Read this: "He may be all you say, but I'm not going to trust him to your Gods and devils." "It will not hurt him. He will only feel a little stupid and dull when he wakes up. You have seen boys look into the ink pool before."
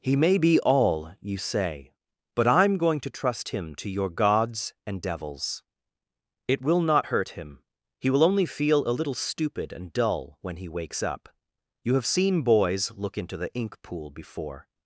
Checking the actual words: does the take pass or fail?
fail